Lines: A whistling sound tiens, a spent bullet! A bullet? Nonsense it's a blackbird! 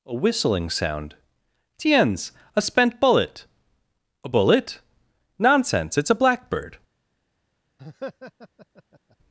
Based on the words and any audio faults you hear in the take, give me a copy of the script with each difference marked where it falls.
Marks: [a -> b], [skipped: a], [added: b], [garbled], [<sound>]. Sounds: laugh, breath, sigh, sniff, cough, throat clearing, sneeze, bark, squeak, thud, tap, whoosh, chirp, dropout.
A whistling sound tiens, a spent bullet! A bullet? Nonsense it's a blackbird! [laugh]